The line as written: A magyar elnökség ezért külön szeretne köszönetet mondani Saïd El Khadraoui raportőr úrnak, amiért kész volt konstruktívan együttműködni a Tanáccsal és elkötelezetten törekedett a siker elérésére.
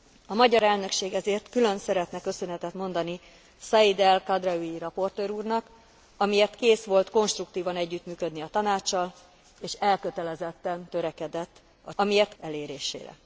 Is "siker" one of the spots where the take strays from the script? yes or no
yes